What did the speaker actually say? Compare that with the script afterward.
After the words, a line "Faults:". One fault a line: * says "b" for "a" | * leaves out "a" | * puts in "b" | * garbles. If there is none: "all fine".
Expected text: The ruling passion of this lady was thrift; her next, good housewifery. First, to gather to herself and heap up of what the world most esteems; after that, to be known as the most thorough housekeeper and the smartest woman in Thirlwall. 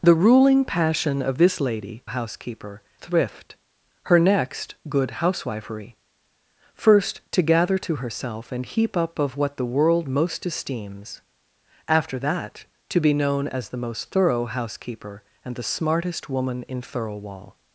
The ruling passion of this lady housekeeper thrift; her next, good housewifery. First, to gather to herself and heap up of what the world most esteems; after that, to be known as the most thorough housekeeper and the smartest woman in Thirlwall.
Faults:
* says "housekeeper" for "was"